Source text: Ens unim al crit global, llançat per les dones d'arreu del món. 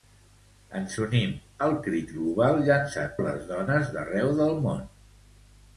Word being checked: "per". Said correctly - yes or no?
no